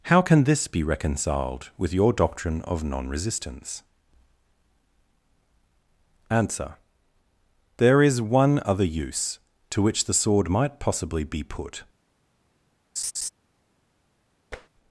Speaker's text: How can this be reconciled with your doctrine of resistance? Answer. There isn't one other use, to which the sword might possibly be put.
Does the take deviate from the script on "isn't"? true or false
true